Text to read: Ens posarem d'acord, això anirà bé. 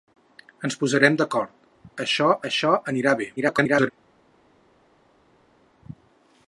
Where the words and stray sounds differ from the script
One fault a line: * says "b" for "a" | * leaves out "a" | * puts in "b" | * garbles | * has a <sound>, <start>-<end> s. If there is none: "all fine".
* puts in "això"
* garbles